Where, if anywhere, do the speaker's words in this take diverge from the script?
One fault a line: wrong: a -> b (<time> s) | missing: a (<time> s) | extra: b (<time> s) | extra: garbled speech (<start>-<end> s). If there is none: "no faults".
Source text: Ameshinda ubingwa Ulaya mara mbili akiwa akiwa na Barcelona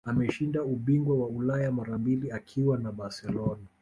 extra: wa (1.2 s)
missing: akiwa (2.8 s)